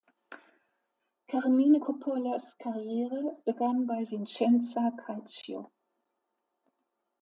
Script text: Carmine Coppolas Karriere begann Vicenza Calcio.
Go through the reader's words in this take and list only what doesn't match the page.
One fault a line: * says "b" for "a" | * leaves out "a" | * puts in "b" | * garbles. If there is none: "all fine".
* puts in "bei"